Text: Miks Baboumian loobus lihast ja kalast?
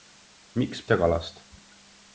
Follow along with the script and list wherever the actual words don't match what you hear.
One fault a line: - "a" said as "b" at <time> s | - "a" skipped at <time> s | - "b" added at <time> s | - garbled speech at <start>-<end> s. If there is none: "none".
- "Baboumian loobus lihast" skipped at 0.8 s